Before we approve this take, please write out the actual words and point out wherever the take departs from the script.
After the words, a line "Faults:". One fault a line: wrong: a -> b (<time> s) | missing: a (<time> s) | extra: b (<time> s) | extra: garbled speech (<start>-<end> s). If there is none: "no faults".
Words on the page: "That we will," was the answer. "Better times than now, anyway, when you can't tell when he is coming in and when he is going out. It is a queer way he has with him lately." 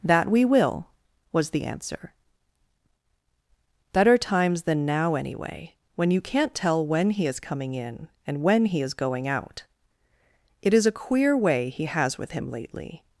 "That we will," was the answer. "Better times than now, anyway, when you can't tell when he is coming in and when he is going out. It is a queer way he has with him lately."
Faults:
no faults